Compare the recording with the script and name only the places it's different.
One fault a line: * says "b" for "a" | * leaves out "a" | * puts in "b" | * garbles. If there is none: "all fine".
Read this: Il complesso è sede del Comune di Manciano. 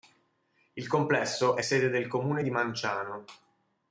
all fine